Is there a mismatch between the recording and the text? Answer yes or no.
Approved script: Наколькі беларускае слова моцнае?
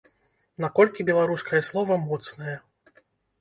no